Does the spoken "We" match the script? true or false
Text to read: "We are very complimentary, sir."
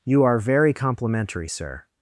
false